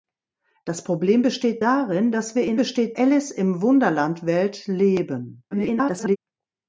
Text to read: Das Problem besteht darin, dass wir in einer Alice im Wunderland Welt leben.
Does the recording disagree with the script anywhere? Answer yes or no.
yes